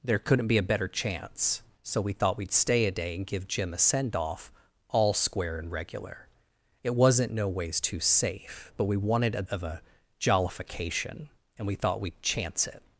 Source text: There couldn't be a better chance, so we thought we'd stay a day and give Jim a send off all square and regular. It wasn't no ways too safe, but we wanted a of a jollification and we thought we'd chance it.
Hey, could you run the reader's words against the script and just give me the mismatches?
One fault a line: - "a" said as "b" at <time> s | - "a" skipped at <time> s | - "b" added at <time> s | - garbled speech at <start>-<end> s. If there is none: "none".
none